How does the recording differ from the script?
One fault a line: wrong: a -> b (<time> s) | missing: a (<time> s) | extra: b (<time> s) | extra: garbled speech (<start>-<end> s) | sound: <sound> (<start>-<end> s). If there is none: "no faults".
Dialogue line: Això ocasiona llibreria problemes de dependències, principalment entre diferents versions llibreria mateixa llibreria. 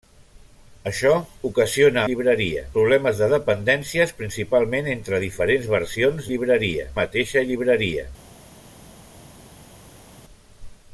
no faults